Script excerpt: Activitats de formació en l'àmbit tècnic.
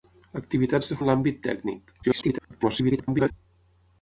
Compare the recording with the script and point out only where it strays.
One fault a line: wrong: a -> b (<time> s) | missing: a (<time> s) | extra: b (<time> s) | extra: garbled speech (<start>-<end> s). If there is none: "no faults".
missing: formació (0.9 s)
extra: garbled speech (2.0-3.3 s)